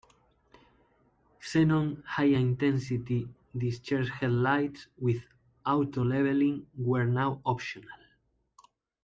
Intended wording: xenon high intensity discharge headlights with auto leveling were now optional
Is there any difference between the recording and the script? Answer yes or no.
no